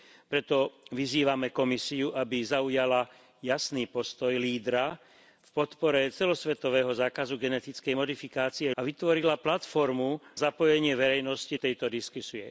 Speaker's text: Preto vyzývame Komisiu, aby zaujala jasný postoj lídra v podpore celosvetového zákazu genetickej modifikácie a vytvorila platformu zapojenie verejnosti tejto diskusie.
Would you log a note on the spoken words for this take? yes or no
no